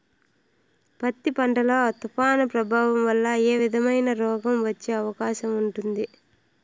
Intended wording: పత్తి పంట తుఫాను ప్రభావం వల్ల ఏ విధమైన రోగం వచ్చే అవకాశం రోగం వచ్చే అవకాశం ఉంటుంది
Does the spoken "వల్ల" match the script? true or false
true